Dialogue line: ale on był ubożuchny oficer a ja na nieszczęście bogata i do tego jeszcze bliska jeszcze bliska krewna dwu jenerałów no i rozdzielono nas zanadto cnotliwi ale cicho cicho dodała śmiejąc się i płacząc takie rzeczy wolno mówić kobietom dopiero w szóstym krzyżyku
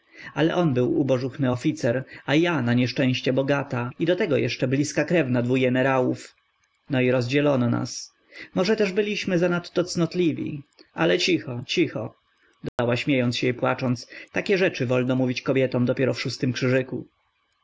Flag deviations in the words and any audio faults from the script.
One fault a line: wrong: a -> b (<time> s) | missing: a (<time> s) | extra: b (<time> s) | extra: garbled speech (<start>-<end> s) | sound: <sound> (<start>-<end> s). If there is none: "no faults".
missing: jeszcze bliska (5.0 s)
extra: może też byliśmy (8.5 s)
sound: dropout (12.7-12.8 s)